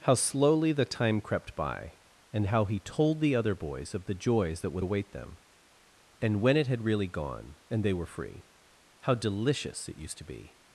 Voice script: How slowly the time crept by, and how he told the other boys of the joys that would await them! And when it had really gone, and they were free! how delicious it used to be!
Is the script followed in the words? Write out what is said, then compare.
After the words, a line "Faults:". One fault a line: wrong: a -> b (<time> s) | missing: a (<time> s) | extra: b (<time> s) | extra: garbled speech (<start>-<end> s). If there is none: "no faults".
How slowly the time crept by, and how he told the other boys of the joys that would await them! And when it had really gone, and they were free! how delicious it used to be!
Faults:
no faults